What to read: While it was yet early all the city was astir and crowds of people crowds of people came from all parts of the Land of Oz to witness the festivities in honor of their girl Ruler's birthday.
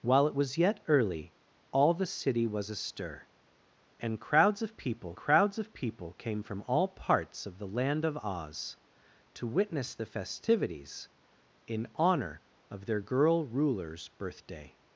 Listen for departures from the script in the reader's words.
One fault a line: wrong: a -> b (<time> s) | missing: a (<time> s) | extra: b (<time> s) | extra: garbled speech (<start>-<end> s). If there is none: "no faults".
no faults